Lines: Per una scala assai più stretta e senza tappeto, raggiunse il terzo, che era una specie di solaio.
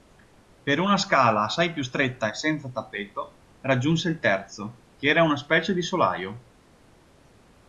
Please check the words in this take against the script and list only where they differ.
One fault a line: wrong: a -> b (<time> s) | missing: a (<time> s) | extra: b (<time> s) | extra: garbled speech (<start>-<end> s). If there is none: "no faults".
no faults